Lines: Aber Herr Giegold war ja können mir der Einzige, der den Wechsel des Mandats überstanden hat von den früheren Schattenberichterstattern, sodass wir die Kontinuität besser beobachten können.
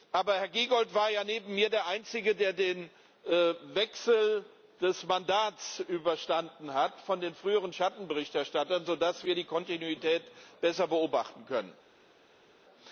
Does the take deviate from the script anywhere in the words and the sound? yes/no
yes